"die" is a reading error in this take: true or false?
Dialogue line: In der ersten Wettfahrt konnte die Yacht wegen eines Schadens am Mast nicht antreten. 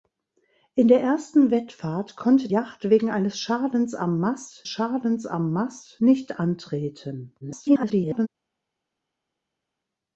true